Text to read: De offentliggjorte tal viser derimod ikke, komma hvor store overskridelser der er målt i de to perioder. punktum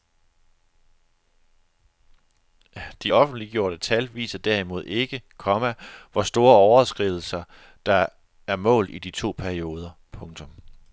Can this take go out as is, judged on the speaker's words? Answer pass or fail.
pass